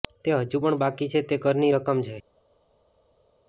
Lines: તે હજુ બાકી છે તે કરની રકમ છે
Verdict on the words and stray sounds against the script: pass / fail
fail